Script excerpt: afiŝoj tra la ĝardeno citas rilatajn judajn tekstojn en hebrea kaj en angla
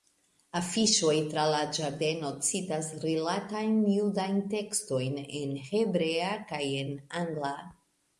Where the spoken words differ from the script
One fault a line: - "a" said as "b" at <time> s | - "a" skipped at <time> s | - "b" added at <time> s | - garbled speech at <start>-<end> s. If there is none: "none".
none